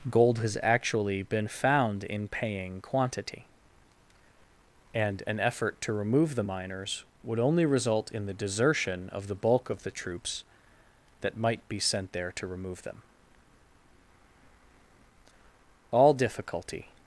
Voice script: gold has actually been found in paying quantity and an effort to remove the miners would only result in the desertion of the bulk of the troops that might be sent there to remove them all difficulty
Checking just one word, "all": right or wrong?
right